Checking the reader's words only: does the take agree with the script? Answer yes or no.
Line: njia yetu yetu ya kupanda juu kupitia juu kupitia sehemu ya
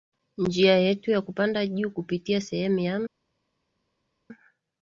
no